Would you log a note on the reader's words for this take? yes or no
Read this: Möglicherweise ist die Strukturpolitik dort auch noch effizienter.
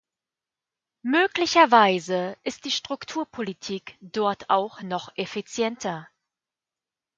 no